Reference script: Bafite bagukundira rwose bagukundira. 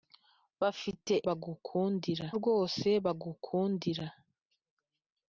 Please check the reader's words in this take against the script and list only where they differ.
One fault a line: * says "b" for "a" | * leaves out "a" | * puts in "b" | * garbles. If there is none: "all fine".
all fine